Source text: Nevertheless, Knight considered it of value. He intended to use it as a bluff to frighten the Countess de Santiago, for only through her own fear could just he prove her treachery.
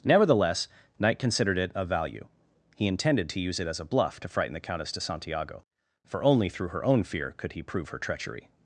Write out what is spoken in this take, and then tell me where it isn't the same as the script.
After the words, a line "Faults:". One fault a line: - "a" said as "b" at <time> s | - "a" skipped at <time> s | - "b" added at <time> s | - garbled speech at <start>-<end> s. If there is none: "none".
Nevertheless, Knight considered it of value. He intended to use it as a bluff to frighten the Countess de Santiago, for only through her own fear could he prove her treachery.
Faults:
- "just" skipped at 7.5 s